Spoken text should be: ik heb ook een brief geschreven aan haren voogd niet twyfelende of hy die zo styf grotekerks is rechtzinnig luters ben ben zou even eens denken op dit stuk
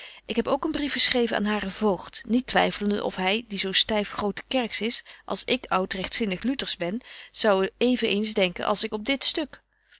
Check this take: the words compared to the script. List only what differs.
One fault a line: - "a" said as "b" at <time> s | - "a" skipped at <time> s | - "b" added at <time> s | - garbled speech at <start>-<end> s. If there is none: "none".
- "als ik oud" added at 5.2 s
- "ben" skipped at 7.0 s
- "als ik" added at 8.6 s